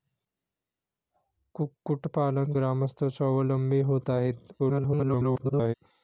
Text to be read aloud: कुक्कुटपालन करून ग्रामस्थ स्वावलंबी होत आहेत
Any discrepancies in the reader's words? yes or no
yes